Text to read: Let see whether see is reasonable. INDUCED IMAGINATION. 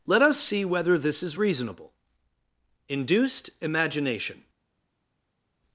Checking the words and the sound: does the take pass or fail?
fail